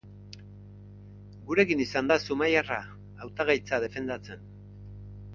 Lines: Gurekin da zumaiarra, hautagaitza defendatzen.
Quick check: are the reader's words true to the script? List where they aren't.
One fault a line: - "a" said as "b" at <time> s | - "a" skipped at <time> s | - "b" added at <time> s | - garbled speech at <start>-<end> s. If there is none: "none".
- "izan" added at 1.9 s